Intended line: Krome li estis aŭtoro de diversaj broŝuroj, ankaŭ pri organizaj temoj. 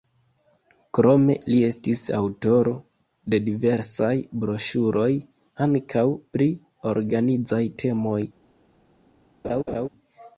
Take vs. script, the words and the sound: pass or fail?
fail